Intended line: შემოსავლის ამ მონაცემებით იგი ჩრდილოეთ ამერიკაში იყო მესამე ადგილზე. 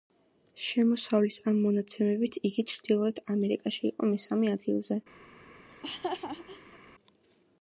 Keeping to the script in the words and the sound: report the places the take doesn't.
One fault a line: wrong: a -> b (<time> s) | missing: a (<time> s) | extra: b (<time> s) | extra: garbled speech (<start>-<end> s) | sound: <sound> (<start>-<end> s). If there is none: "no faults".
sound: laugh (5.7-6.8 s)